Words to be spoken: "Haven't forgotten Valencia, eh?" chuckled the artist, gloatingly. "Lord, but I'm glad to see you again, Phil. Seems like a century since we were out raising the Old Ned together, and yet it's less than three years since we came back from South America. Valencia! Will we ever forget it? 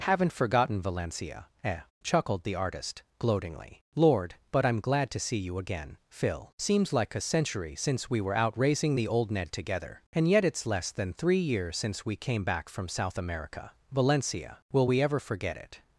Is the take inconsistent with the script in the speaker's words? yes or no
no